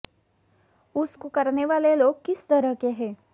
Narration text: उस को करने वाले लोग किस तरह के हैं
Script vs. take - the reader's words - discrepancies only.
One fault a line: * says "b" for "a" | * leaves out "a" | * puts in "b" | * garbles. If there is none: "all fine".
all fine